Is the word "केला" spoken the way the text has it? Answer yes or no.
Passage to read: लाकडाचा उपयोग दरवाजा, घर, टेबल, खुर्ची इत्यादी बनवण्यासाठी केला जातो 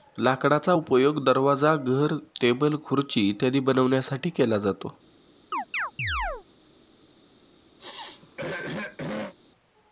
yes